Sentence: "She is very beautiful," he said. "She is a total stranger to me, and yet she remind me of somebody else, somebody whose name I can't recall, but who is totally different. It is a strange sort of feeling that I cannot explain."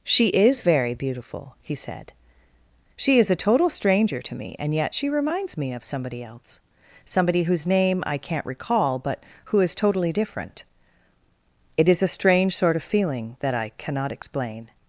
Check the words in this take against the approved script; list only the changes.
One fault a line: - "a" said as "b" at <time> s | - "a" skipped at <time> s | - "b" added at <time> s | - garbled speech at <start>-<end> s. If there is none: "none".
- "remind" said as "reminds" at 5.1 s